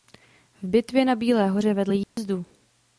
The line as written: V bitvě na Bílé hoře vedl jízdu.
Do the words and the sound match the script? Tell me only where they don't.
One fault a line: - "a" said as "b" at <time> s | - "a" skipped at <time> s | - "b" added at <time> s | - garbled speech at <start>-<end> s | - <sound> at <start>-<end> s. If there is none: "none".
- dropout at 2.0-2.2 s